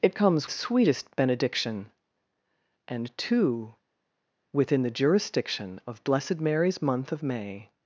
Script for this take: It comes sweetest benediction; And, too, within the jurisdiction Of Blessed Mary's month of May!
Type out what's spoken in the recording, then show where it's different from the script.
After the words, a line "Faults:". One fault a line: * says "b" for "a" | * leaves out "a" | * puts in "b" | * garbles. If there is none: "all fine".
It comes sweetest benediction; And, too, within the jurisdiction Of Blessed Mary's month of May!
Faults:
all fine